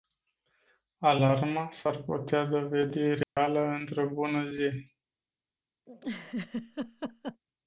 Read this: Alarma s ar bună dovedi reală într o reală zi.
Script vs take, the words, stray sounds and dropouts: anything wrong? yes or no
yes